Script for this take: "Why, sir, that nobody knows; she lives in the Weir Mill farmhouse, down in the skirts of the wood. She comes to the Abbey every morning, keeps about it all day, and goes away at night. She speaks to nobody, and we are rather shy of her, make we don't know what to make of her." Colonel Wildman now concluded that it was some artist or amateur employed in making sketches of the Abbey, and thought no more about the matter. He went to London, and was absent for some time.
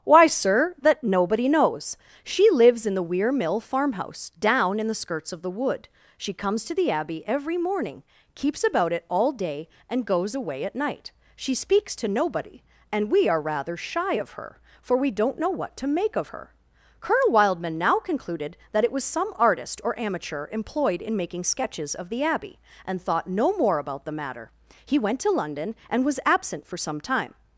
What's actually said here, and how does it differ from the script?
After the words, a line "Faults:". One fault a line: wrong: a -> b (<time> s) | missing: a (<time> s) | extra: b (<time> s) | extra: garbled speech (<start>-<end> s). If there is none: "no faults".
"Why, sir, that nobody knows; she lives in the Weir Mill farmhouse, down in the skirts of the wood. She comes to the Abbey every morning, keeps about it all day, and goes away at night. She speaks to nobody, and we are rather shy of her, for we don't know what to make of her." Colonel Wildman now concluded that it was some artist or amateur employed in making sketches of the Abbey, and thought no more about the matter. He went to London, and was absent for some time.
Faults:
wrong: make -> for (14.8 s)